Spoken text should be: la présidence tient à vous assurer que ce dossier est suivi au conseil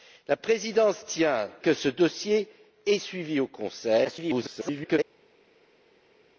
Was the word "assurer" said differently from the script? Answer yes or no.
yes